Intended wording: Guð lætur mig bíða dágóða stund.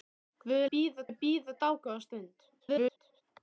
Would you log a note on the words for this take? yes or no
yes